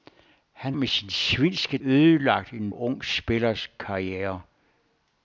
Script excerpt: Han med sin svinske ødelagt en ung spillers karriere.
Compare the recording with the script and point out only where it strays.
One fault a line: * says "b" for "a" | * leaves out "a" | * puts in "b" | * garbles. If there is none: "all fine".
all fine